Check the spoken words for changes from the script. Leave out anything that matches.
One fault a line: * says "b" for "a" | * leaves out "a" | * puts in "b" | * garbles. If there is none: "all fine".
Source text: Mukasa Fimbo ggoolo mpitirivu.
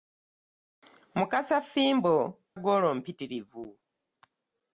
all fine